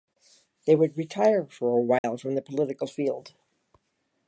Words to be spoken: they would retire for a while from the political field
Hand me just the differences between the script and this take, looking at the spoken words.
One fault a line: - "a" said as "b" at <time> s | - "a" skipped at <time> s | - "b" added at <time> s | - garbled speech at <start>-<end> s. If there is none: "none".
none